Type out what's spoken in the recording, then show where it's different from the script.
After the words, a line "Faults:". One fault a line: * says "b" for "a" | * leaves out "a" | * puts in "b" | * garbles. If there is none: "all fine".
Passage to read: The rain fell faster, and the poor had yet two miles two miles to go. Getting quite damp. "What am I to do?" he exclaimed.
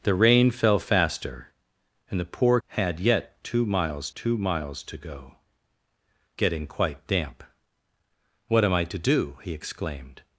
The rain fell faster, and the poor had yet two miles two miles to go. Getting quite damp. "What am I to do?" he exclaimed.
Faults:
all fine